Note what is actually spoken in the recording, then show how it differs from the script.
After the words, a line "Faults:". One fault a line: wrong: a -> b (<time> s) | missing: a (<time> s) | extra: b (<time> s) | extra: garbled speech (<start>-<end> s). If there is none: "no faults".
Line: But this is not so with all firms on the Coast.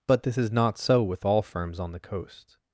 But this is not so with all firms on the Coast.
Faults:
no faults